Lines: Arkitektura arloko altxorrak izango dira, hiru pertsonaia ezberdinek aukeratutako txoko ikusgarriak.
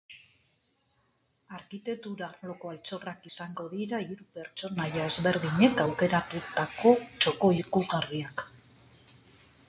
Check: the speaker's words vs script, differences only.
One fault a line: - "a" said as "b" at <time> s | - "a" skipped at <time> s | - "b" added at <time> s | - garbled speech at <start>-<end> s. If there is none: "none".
none